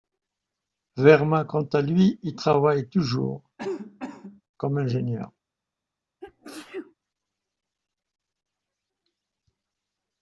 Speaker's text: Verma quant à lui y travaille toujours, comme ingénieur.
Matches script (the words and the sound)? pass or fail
fail